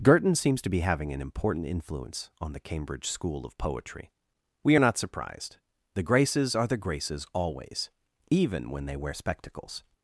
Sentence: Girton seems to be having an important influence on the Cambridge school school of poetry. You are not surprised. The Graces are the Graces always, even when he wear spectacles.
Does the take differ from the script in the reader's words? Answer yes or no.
yes